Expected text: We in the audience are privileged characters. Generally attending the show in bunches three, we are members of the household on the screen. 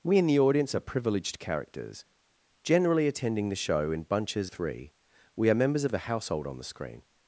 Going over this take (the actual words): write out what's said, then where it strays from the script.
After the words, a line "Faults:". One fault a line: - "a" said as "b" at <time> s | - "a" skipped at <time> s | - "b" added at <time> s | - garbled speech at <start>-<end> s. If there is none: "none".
We in the audience are privileged characters. Generally attending the show in bunches three, we are members of the household on the screen.
Faults:
none